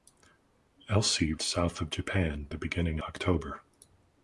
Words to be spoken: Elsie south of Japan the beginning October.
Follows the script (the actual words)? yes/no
yes